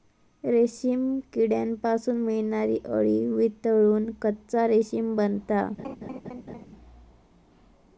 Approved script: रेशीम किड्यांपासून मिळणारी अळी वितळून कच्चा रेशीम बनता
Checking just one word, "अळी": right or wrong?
right